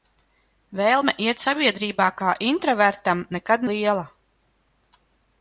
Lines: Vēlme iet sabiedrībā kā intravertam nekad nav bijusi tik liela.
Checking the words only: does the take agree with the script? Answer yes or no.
no